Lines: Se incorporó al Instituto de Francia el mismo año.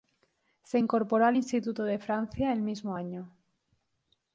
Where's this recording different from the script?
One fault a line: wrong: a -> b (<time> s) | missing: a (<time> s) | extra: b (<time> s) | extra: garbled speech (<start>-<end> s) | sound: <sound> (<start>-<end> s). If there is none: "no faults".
no faults